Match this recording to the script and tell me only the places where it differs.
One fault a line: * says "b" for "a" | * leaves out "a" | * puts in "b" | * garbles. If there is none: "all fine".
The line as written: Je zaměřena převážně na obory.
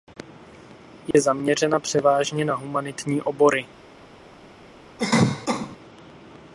* puts in "humanitní"